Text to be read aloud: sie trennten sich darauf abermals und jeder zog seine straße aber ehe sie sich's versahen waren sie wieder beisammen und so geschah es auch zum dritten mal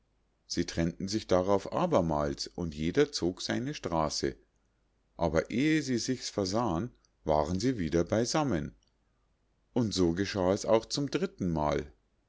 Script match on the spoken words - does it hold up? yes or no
yes